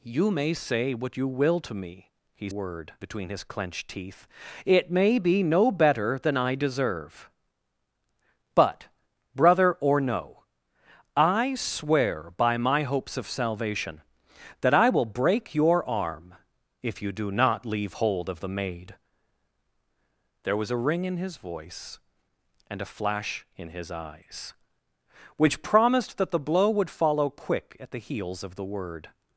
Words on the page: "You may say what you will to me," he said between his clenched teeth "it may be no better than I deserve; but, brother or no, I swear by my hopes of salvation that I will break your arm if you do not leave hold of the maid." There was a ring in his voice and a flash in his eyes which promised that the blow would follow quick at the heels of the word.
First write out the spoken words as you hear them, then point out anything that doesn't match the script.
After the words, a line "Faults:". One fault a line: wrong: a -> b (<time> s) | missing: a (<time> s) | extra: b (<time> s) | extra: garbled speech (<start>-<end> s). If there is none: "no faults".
"You may say what you will to me," he word between his clenched teeth "it may be no better than I deserve; but, brother or no, I swear by my hopes of salvation that I will break your arm if you do not leave hold of the maid." There was a ring in his voice and a flash in his eyes which promised that the blow would follow quick at the heels of the word.
Faults:
wrong: said -> word (2.5 s)